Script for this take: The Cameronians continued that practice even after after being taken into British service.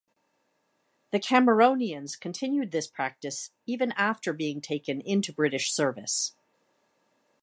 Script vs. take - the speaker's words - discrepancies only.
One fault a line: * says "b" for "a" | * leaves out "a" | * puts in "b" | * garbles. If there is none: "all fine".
* says "this" for "that"
* leaves out "after"